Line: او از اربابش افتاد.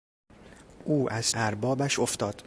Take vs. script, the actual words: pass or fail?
pass